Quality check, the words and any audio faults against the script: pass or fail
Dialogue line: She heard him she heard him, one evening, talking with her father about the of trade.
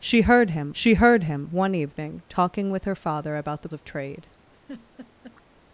fail